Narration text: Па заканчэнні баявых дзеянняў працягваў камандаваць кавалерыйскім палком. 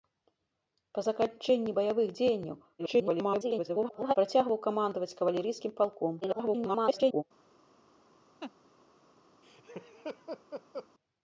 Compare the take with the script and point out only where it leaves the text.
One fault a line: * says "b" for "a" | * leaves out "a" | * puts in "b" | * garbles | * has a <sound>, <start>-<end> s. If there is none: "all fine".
* garbles
* garbles
* has a laugh, 8.4-8.5 s
* has a laugh, 9.4-10.9 s